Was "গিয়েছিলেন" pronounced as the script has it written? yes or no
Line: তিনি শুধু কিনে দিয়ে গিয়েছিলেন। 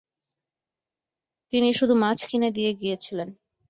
yes